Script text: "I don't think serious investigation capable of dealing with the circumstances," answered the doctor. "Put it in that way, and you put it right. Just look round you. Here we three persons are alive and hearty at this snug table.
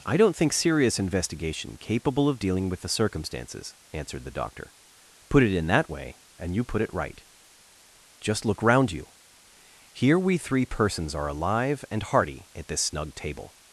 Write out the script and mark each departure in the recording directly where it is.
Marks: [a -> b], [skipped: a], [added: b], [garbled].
"I don't think serious investigation capable of dealing with the circumstances," answered the doctor. "Put it in that way, and you put it right. Just look round you. Here we three persons are alive and hearty at this snug table.